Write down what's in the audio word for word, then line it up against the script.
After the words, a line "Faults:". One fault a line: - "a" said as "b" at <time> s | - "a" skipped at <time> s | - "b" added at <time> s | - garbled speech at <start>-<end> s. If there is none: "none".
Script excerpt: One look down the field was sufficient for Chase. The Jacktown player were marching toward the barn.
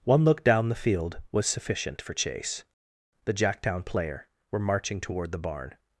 One look down the field was sufficient for Chase. The Jacktown player were marching toward the barn.
Faults:
none